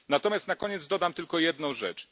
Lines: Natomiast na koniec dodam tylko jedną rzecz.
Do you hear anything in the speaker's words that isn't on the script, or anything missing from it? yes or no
no